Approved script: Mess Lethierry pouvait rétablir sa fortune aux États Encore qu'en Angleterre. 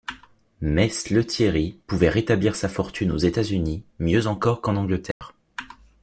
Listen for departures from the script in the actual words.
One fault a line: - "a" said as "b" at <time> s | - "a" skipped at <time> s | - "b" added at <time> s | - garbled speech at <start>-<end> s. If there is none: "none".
- "Unis mieux" added at 3.4 s